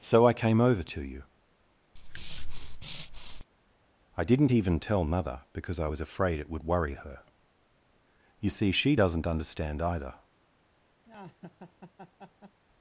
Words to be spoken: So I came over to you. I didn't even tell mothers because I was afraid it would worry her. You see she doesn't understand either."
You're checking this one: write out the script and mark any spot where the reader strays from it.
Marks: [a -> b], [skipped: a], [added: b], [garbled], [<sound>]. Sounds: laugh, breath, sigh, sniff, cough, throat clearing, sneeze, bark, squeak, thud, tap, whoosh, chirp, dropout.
So I came over to you. [breath] I didn't even tell [mothers -> mother] because I was afraid it would worry her. You see she doesn't understand either." [laugh]